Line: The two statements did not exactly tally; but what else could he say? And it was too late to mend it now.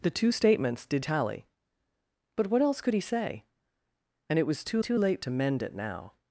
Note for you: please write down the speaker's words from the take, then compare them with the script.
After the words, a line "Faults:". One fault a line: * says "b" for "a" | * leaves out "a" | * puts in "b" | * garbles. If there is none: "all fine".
The two statements did tally; but what else could he say? And it was too too late to mend it now.
Faults:
* leaves out "not exactly"
* puts in "too"